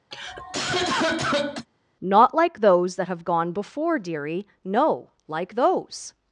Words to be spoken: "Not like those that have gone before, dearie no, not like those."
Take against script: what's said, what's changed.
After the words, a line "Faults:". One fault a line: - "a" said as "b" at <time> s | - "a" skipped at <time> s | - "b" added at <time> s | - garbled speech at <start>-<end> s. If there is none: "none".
"Not like those that have gone before, dearie no, like those."
Faults:
- "not" skipped at 5.1 s